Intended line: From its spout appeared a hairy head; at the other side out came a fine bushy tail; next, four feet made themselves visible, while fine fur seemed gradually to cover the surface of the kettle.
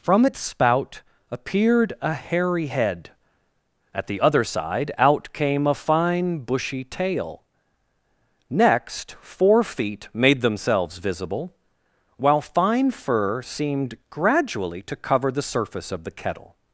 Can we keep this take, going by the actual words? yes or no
yes